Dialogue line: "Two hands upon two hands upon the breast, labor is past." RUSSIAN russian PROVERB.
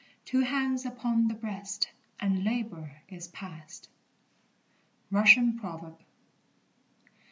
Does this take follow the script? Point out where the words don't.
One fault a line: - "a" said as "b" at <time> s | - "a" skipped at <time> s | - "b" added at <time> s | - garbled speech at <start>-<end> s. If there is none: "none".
- "two hands upon" skipped at 1.3 s
- "and" added at 2.2 s
- "russian" skipped at 5.6 s